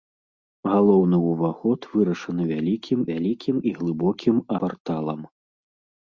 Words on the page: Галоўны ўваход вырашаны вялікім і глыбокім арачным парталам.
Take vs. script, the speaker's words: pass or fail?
fail